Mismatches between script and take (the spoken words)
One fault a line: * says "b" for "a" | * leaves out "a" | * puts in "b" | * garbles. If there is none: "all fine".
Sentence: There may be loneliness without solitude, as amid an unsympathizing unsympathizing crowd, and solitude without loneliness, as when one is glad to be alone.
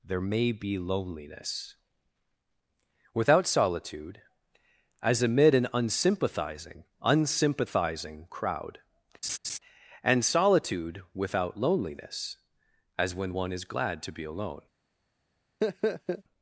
all fine